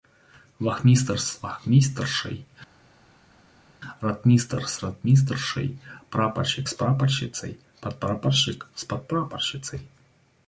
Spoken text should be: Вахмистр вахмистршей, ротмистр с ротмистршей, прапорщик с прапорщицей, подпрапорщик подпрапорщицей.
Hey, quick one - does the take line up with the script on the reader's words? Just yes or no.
no